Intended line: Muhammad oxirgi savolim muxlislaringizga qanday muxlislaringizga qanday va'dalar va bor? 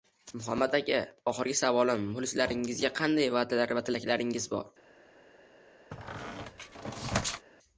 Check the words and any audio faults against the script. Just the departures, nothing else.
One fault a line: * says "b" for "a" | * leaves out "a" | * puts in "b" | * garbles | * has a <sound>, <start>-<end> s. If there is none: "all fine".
* puts in "aka"
* leaves out "muxlislaringizga qanday"
* puts in "tilaklaringiz"
* has a squeak, 5.9-7.5 s